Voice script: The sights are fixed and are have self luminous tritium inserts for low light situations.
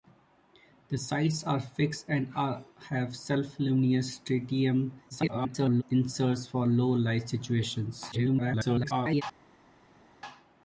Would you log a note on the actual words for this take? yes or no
yes